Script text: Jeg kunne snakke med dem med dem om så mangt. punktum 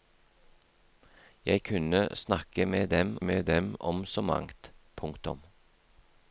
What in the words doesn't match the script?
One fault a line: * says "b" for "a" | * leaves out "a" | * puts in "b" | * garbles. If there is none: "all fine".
all fine